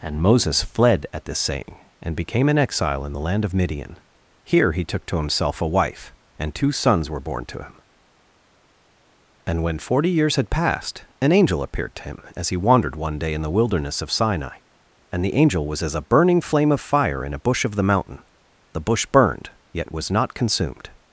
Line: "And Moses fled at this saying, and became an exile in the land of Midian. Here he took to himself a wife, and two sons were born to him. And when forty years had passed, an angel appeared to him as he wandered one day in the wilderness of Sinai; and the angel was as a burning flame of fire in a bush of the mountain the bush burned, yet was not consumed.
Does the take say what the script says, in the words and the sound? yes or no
yes